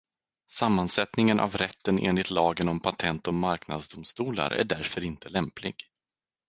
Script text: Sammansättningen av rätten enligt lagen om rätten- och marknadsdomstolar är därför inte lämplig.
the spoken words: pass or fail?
fail